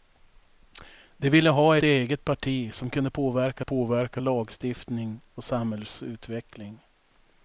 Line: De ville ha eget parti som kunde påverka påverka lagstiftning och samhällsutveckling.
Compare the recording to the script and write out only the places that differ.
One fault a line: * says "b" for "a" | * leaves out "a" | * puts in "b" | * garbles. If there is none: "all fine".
all fine